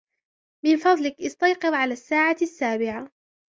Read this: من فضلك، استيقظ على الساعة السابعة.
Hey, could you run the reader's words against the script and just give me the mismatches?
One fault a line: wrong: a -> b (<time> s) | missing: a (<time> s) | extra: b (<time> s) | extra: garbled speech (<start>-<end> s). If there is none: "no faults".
no faults